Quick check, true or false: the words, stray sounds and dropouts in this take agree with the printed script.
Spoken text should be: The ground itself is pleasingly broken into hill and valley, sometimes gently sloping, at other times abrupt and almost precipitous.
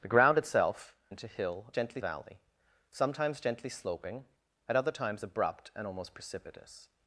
false